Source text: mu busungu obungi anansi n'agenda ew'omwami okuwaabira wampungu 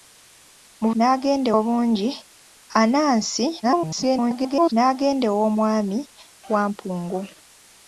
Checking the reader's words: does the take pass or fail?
fail